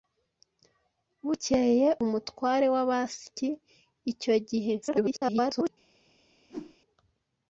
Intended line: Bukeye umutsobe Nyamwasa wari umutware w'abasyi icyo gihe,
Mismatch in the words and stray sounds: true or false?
true